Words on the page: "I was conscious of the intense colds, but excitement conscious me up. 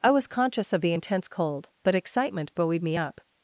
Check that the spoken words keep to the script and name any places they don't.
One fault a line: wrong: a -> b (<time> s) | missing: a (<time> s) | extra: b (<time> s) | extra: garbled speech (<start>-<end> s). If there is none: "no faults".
wrong: colds -> cold (1.2 s)
wrong: conscious -> buoyed (2.5 s)